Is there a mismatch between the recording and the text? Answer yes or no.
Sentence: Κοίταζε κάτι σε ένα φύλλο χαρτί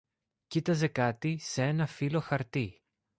no